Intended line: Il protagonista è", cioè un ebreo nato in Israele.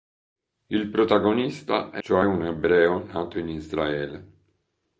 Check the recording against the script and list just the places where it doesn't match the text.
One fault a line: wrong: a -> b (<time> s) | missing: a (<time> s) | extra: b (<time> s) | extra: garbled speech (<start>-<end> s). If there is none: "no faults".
no faults